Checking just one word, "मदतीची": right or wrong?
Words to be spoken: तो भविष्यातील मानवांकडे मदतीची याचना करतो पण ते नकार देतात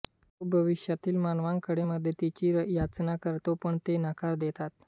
right